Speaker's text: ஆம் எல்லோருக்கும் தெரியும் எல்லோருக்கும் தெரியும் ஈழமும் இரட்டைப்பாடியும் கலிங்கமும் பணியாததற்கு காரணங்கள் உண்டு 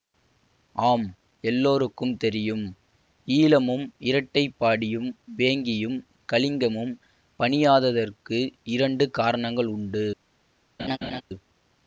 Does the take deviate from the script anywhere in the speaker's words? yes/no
yes